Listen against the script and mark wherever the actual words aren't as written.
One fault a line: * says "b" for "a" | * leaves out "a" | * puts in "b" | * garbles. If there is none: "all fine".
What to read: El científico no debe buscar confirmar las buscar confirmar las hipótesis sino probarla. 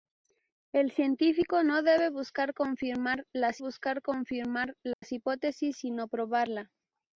all fine